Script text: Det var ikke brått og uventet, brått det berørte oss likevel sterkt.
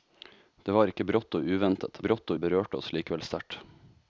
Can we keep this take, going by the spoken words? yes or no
yes